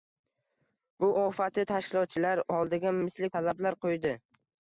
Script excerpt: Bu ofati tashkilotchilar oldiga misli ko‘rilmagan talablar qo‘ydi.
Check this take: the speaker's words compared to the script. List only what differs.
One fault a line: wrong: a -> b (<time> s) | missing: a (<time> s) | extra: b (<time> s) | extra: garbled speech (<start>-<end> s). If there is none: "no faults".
missing: ko‘rilmagan (3.3 s)